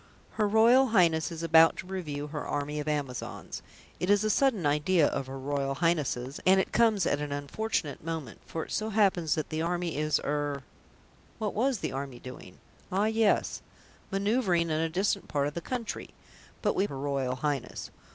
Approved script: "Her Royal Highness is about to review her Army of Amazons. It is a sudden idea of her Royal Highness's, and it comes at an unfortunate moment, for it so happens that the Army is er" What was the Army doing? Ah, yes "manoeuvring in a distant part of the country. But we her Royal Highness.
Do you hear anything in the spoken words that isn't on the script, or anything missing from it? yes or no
no